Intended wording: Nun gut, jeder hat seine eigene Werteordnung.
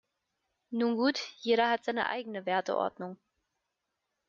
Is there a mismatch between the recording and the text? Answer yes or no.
no